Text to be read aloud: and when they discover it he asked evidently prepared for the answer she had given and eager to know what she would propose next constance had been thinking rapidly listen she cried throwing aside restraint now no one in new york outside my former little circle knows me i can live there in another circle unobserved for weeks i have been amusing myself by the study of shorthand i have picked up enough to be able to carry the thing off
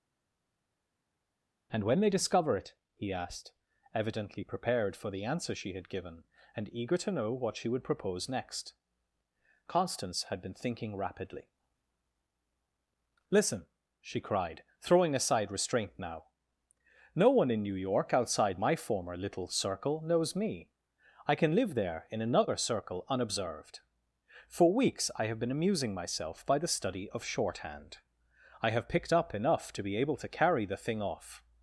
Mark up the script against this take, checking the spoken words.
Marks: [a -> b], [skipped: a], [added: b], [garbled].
and when they discover it he asked evidently prepared for the answer she had given and eager to know what she would propose next constance had been thinking rapidly listen she cried throwing aside restraint now no one in new york outside my former little circle knows me i can live there in another circle unobserved for weeks i have been amusing myself by the study of shorthand i have picked up enough to be able to carry the thing off